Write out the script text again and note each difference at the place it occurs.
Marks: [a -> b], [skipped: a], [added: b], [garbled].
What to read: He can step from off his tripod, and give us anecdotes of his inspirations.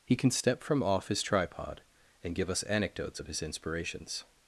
He can step from off his tripod, and give us anecdotes of his inspirations.